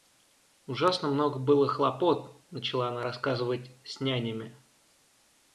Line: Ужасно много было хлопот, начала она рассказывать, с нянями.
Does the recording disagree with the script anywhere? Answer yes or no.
no